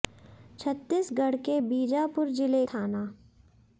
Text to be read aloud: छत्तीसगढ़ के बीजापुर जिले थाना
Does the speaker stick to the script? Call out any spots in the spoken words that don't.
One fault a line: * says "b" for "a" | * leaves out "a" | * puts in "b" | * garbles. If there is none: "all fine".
all fine